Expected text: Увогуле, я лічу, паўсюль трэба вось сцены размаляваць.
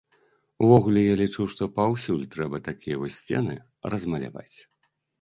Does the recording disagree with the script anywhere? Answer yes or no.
yes